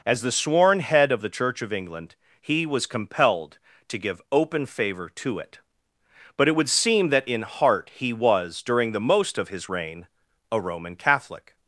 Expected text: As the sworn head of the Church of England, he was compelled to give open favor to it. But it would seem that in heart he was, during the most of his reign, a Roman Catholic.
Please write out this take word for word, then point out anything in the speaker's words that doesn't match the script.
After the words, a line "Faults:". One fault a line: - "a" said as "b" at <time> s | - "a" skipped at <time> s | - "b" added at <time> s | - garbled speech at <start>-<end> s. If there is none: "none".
As the sworn head of the Church of England, he was compelled to give open favor to it. But it would seem that in heart he was, during the most of his reign, a Roman Catholic.
Faults:
none